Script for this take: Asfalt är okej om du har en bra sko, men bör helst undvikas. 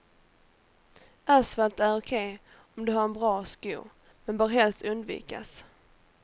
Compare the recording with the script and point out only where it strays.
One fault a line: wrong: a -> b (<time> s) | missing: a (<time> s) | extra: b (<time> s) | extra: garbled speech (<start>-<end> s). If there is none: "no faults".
no faults